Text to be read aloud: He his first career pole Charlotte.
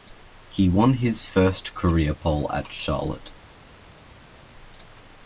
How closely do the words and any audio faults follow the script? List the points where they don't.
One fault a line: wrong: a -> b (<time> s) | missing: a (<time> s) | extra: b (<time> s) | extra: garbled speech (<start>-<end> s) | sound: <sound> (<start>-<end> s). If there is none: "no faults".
extra: won (0.7 s)
extra: at (2.5 s)